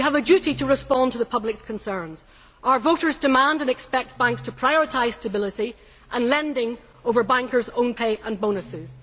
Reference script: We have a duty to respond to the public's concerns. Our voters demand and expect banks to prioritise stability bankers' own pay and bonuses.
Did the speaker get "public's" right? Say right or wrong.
right